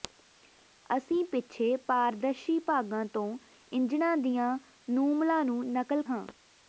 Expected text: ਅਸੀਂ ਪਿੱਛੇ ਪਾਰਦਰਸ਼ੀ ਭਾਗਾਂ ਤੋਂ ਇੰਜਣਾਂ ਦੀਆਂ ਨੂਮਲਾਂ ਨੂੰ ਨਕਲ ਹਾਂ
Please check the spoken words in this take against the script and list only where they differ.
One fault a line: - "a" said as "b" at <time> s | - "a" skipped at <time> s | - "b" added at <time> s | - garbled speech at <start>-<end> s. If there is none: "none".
none